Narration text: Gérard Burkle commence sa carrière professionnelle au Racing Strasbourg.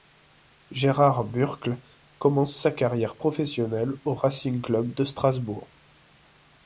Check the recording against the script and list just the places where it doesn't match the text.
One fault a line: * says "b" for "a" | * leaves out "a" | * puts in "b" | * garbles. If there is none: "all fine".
* puts in "Club de"